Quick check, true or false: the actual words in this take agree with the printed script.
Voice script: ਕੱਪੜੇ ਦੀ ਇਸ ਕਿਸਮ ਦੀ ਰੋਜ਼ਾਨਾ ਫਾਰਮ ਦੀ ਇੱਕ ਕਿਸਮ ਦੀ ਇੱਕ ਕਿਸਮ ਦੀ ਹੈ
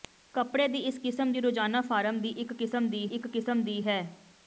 true